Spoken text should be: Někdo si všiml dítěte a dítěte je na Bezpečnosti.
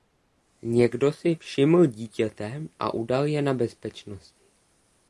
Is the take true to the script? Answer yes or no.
no